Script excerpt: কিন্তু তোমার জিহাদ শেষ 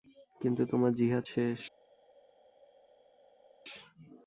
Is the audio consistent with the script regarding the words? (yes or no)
yes